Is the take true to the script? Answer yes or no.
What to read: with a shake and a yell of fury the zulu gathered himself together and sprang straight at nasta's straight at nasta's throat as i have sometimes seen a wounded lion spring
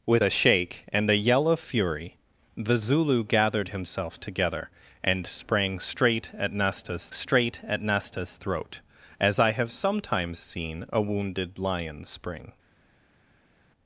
yes